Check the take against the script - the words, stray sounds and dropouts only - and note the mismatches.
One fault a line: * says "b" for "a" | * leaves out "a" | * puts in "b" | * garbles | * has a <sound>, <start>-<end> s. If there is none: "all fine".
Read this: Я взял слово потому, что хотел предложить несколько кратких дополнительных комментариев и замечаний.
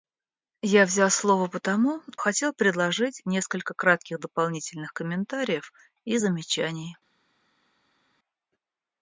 * leaves out "что"